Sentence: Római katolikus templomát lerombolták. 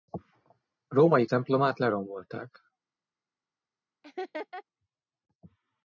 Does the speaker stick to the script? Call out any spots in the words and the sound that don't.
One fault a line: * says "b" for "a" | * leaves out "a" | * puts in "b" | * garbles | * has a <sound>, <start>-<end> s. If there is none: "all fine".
* leaves out "katolikus"
* has a laugh, 4.0-4.6 s